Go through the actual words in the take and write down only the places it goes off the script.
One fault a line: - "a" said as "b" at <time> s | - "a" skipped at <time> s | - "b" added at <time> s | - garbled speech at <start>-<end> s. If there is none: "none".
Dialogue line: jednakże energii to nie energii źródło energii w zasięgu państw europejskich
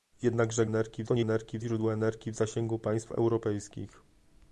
none